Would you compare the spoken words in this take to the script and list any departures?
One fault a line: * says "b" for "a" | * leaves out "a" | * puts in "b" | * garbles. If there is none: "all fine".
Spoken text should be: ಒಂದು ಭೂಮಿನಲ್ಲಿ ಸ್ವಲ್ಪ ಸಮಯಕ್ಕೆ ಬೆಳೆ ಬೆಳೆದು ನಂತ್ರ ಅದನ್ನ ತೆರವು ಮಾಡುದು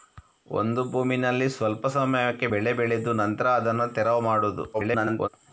* garbles